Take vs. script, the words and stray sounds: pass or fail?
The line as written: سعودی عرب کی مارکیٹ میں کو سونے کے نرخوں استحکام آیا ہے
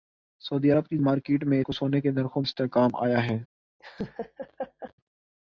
fail